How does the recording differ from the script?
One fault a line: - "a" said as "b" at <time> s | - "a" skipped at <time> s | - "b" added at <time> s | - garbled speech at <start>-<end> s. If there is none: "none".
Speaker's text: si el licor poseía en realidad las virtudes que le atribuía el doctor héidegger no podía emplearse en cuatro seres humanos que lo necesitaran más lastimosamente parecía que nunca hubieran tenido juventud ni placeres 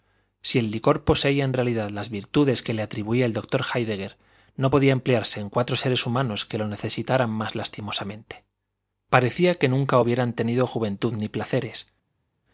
none